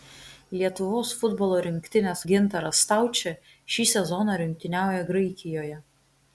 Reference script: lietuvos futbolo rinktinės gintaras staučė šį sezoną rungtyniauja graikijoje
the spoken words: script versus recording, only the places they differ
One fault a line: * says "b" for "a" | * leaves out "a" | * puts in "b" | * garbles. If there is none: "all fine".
all fine